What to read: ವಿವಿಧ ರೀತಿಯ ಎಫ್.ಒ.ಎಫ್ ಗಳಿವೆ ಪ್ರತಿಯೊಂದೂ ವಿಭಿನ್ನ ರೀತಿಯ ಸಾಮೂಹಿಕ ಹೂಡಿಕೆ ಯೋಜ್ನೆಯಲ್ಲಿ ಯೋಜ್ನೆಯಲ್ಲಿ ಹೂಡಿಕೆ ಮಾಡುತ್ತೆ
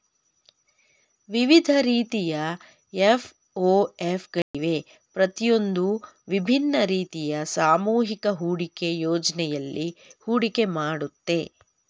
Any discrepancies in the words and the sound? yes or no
yes